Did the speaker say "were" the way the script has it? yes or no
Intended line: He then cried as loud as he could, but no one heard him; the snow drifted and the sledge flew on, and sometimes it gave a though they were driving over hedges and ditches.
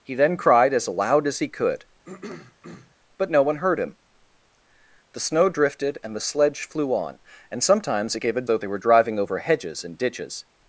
yes